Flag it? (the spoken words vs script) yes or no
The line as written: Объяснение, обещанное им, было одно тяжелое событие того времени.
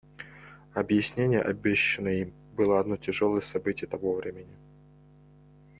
no